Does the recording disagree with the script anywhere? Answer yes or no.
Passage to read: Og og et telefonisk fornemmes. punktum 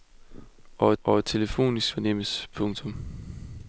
no